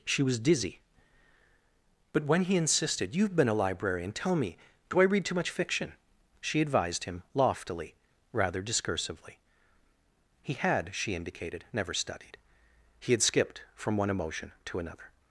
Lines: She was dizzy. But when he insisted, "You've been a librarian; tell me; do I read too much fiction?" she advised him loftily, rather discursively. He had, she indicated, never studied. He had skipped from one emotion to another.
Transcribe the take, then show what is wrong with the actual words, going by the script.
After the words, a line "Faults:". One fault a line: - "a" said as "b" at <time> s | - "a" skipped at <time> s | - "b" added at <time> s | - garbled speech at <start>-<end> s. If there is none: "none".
She was dizzy. But when he insisted, "You've been a librarian; tell me; do I read too much fiction?" she advised him loftily, rather discursively. He had, she indicated, never studied. He had skipped from one emotion to another.
Faults:
none